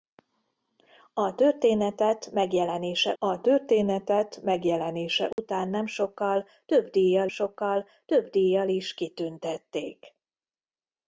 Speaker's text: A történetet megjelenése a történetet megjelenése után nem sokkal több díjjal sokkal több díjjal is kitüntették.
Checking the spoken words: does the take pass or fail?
pass